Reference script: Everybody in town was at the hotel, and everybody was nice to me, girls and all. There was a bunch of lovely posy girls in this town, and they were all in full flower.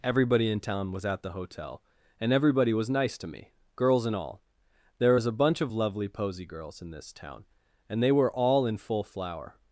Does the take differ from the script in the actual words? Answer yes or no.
no